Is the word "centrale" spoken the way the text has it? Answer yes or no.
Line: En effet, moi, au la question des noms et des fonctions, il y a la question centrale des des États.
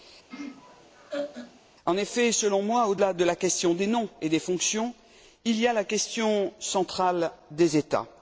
yes